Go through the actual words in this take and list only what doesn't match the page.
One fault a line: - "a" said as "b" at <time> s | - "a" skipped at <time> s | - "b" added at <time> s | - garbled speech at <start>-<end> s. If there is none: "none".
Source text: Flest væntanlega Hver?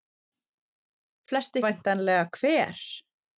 none